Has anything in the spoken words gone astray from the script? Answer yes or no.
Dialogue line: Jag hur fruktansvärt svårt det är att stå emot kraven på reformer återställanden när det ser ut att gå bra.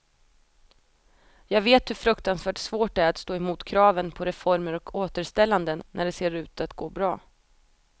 yes